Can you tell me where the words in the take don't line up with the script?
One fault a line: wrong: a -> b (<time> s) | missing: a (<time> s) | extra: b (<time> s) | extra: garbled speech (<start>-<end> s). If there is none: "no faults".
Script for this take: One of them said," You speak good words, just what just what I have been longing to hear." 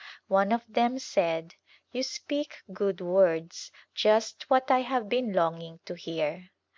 missing: just what (4.7 s)